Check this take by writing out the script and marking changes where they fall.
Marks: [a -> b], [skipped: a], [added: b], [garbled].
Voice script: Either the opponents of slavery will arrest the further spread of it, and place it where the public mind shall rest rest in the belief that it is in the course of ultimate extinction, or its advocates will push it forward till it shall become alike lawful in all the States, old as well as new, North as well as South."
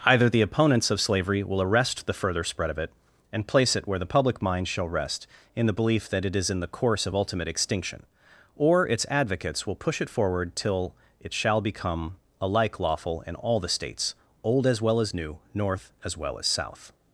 Either the opponents of slavery will arrest the further spread of it, and place it where the public mind shall rest [skipped: rest] in the belief that it is in the course of ultimate extinction, or its advocates will push it forward till it shall become alike lawful in all the States, old as well as new, North as well as South."